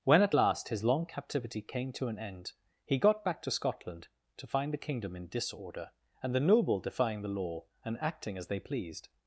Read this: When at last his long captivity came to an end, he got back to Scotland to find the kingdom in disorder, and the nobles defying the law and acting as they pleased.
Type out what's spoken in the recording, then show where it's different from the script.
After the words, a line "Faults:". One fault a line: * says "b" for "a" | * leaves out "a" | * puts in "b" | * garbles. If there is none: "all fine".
When at last his long captivity came to an end, he got back to Scotland to find the kingdom in disorder, and the noble defying the law and acting as they pleased.
Faults:
* says "noble" for "nobles"